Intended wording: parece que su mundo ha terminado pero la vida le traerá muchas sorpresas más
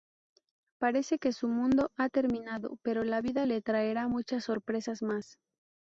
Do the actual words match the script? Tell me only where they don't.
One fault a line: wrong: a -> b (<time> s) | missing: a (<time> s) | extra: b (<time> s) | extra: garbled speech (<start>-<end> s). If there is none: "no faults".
no faults